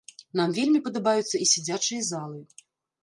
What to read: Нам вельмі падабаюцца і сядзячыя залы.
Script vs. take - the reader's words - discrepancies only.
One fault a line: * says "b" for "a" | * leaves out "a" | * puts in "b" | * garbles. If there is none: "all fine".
all fine